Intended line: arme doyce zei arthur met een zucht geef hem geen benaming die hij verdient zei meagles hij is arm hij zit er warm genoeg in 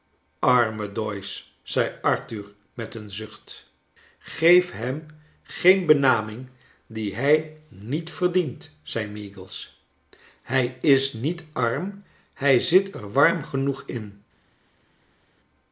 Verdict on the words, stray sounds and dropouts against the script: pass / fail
fail